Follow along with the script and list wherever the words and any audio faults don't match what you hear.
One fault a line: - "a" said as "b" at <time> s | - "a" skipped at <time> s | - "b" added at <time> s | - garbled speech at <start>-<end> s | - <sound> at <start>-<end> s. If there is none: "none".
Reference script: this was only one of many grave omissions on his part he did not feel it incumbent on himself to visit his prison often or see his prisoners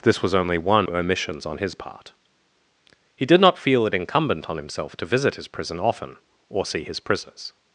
- "of many grave" skipped at 0.9 s